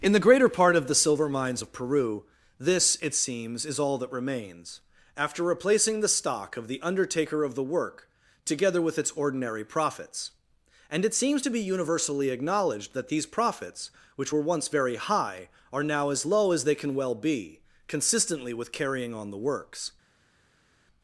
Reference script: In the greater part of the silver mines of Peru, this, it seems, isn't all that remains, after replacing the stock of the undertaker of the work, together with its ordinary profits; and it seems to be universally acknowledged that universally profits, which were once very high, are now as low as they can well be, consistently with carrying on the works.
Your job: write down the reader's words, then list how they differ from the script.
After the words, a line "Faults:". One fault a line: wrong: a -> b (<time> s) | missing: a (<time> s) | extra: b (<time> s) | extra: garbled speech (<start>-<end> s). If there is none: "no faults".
In the greater part of the silver mines of Peru, this, it seems, is all that remains, after replacing the stock of the undertaker of the work, together with its ordinary profits; and it seems to be universally acknowledged that these profits, which were once very high, are now as low as they can well be, consistently with carrying on the works.
Faults:
wrong: isn't -> is (3.7 s)
wrong: universally -> these (13.1 s)